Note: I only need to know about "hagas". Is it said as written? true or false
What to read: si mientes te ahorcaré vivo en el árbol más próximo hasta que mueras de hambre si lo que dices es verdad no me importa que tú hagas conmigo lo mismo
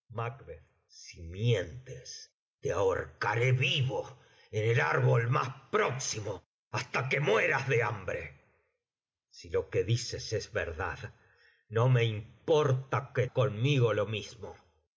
false